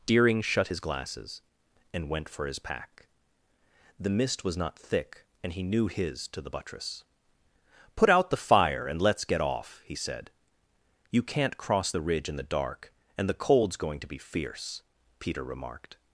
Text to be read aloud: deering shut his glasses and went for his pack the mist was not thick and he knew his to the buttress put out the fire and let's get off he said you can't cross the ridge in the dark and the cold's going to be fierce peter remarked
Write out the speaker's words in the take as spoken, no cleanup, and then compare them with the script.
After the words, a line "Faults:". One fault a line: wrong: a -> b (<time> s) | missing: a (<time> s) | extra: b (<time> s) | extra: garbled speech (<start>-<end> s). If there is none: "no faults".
deering shut his glasses and went for his pack the mist was not thick and he knew his to the buttress put out the fire and let's get off he said you can't cross the ridge in the dark and the cold's going to be fierce peter remarked
Faults:
no faults